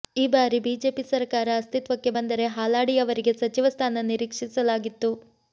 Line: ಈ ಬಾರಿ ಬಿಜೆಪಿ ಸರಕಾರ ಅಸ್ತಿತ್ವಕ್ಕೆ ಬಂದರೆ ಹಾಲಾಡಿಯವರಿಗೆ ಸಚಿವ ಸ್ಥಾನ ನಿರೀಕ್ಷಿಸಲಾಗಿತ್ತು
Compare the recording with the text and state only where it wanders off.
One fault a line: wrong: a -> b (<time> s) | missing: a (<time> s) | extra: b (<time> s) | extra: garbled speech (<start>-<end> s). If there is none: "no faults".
no faults